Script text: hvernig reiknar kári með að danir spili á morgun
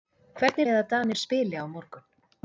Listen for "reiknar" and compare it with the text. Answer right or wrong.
wrong